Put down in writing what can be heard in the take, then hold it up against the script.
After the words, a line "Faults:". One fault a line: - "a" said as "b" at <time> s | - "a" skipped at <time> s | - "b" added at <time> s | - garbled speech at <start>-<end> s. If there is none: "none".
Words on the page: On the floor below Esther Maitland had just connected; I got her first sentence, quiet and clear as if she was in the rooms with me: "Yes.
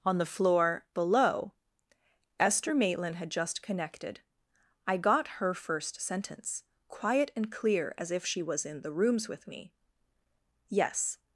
On the floor below Esther Maitland had just connected; I got her first sentence, quiet and clear as if she was in the rooms with me: "Yes.
Faults:
none